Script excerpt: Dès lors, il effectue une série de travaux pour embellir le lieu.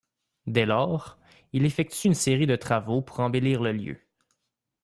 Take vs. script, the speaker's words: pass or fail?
pass